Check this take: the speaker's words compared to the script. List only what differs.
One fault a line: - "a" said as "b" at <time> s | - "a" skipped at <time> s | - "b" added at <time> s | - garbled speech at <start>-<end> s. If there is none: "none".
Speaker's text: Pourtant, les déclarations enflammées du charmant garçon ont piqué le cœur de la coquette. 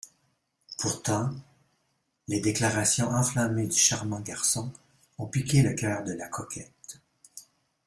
none